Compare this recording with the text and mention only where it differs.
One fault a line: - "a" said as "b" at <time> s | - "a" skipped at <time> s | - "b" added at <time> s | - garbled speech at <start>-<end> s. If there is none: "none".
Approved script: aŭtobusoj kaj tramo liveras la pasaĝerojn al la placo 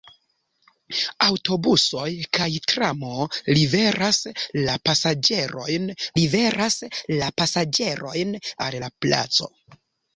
- "liveras la pasaĝerojn" added at 6.2 s